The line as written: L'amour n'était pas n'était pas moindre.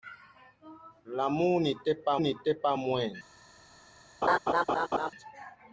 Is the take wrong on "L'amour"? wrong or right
right